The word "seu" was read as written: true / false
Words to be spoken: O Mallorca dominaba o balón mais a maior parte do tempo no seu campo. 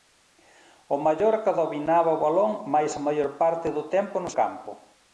false